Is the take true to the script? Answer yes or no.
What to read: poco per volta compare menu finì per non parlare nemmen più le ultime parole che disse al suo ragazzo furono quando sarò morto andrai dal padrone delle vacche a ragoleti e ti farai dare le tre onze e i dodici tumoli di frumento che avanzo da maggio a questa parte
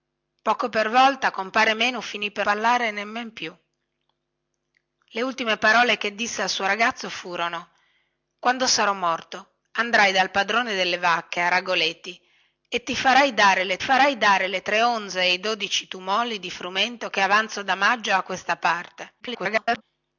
no